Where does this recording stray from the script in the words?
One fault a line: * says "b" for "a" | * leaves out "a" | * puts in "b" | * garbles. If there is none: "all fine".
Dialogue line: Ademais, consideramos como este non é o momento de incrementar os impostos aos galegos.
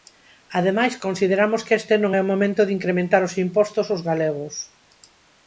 * says "que" for "como"